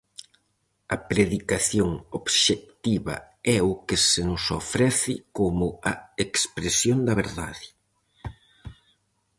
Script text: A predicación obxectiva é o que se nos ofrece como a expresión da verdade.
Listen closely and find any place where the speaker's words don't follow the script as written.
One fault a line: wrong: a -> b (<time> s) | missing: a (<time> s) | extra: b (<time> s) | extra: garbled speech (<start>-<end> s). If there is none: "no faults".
no faults